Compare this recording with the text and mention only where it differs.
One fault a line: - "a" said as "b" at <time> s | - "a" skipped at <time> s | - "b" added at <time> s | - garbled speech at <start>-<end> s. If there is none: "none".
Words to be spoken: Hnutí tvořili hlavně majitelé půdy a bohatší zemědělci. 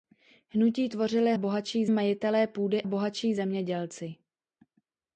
- "hlavně" said as "bohatší" at 1.4 s
- "a" skipped at 2.8 s